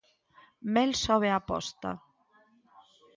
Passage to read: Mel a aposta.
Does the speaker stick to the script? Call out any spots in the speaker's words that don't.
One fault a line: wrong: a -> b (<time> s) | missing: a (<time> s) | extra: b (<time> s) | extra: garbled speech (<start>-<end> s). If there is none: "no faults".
extra: sobe (1.0 s)